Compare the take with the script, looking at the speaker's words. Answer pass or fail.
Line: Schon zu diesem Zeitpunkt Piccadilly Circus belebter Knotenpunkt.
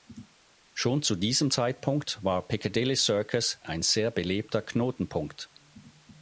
fail